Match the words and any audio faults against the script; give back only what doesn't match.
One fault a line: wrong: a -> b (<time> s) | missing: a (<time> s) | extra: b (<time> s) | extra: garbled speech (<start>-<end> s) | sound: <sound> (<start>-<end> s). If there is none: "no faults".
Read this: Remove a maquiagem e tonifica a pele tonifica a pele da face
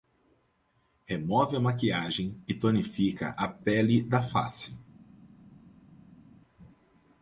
missing: tonifica a pele (4.0 s)